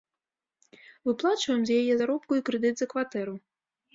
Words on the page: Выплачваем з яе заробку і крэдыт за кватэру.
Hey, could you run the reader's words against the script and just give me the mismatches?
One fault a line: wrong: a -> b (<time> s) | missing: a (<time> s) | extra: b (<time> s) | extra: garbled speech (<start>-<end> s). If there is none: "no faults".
no faults